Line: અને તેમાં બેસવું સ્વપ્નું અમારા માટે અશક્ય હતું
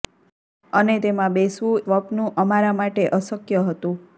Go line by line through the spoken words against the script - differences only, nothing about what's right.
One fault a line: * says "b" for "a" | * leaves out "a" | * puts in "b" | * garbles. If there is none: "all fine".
all fine